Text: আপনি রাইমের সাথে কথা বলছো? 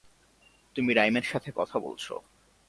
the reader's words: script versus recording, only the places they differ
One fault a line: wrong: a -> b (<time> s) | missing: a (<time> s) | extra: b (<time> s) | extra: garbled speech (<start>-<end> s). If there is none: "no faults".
wrong: আপনি -> তুমি (0.8 s)